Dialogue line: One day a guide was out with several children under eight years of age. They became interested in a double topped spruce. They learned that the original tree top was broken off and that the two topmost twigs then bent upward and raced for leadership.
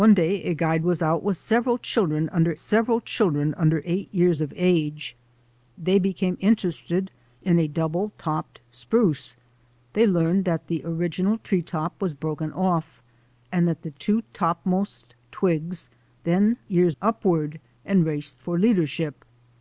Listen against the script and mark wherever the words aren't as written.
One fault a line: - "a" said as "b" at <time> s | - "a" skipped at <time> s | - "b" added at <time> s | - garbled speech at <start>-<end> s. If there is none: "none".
- "several children under" added at 2.6 s
- "bent" said as "years" at 16.7 s